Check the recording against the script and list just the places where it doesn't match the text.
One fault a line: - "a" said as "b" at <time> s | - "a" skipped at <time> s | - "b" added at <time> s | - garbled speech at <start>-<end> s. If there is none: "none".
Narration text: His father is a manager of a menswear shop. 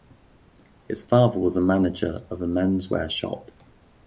- "is" said as "was" at 1.4 s